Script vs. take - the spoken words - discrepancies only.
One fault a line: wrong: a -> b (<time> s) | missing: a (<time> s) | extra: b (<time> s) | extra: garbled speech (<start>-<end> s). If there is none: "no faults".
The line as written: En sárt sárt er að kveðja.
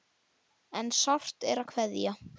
missing: sárt (1.4 s)